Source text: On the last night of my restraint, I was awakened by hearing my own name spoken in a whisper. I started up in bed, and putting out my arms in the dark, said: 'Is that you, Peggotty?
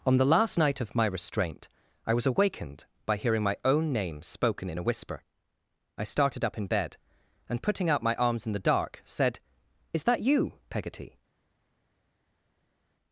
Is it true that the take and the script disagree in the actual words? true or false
false